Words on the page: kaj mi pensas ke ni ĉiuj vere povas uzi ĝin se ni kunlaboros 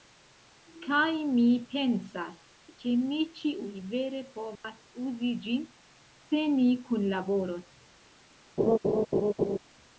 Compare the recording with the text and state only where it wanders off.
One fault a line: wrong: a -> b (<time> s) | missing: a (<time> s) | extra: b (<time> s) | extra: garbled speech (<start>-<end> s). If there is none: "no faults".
no faults